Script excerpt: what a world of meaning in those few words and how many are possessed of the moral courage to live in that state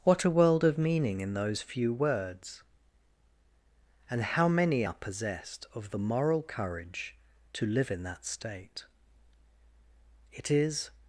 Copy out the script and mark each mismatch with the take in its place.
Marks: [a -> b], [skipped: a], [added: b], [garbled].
what a world of meaning in those few words and how many are possessed of the moral courage to live in that state [added: it is]